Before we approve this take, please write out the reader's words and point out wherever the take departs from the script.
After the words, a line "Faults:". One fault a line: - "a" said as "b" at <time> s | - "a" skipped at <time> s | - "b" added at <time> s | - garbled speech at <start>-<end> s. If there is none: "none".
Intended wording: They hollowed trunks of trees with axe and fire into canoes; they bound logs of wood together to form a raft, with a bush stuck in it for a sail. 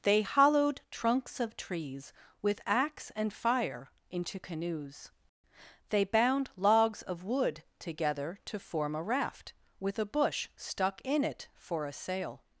They hollowed trunks of trees with axe and fire into canoes; they bound logs of wood together to form a raft, with a bush stuck in it for a sail.
Faults:
none